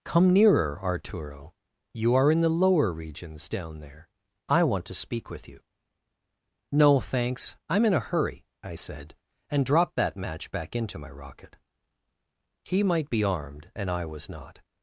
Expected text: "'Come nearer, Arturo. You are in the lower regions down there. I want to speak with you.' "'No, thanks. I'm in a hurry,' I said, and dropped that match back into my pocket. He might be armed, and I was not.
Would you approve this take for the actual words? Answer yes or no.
no